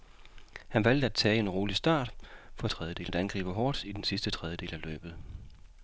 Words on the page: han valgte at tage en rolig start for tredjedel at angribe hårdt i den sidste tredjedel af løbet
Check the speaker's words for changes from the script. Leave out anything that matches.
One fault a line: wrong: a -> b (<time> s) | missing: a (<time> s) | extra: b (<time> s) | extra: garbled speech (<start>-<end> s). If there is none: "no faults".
no faults